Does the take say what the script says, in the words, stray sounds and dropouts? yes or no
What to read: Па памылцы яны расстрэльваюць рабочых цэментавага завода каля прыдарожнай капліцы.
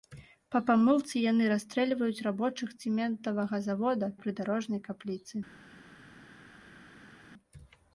no